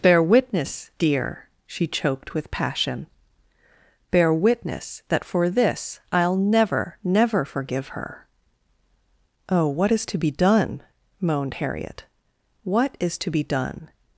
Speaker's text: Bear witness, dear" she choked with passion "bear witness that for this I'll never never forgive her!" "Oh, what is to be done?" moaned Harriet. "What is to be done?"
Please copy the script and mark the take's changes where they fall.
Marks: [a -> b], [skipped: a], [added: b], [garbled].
Bear witness, dear" she choked with passion "bear witness that for this I'll never never forgive her!" "Oh, what is to be done?" moaned Harriet. "What is to be done?"